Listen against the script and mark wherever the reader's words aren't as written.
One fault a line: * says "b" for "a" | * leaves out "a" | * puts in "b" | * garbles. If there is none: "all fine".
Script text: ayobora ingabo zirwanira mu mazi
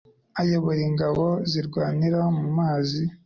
all fine